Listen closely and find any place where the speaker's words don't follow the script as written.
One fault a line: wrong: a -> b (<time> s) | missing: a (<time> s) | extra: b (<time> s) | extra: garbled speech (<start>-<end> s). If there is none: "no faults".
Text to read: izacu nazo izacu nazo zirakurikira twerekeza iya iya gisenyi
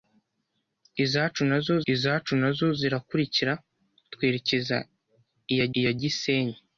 no faults